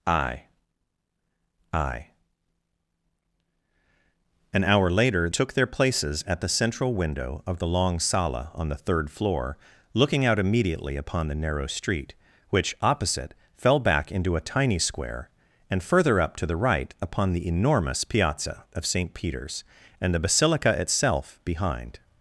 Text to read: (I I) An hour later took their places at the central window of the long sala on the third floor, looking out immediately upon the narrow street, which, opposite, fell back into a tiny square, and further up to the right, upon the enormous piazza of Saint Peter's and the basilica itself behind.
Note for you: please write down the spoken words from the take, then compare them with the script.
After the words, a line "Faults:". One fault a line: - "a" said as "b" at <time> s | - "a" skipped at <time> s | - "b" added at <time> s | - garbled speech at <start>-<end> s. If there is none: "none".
(I I) An hour later took their places at the central window of the long sala on the third floor, looking out immediately upon the narrow street, which, opposite, fell back into a tiny square, and further up to the right, upon the enormous piazza of Saint Peter's and the basilica itself behind.
Faults:
none